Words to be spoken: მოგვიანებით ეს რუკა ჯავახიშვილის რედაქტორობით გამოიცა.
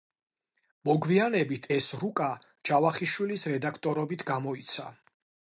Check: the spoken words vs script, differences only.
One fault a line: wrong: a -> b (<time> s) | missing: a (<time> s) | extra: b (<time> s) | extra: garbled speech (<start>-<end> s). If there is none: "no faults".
no faults